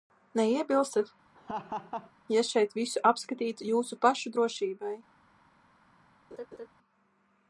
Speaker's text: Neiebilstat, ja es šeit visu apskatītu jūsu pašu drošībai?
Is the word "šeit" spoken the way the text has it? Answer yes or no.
yes